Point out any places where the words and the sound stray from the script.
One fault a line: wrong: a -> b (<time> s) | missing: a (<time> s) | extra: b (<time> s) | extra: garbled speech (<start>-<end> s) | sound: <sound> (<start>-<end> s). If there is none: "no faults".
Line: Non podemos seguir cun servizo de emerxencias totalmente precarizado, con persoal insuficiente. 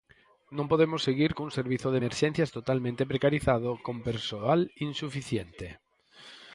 no faults